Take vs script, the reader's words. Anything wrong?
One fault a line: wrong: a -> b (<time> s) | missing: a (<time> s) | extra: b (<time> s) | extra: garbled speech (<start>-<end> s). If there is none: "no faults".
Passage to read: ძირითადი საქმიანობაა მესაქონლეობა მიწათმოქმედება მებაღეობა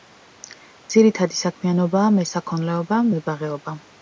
missing: მიწათმოქმედება (3.0 s)